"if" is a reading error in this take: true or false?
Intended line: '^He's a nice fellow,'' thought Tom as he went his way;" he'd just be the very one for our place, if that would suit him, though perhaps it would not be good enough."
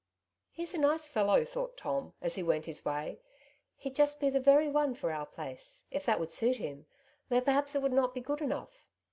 false